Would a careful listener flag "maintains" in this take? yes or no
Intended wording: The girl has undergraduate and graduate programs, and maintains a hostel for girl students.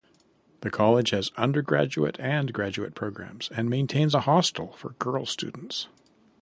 no